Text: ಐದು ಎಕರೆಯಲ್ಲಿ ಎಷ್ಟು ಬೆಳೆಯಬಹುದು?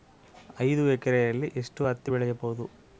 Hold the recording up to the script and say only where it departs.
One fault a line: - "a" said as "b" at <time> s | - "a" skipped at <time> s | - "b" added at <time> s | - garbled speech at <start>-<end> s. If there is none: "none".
- "ಹತ್ತಿ" added at 1.8 s